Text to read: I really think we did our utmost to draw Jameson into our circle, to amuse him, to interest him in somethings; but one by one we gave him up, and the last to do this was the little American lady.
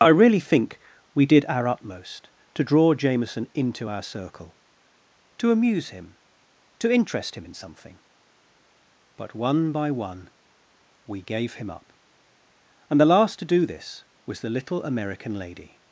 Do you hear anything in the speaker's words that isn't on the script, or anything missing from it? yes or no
yes